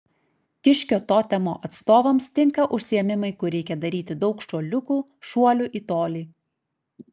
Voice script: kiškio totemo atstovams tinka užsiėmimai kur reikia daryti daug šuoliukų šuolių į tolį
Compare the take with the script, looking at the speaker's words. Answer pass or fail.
pass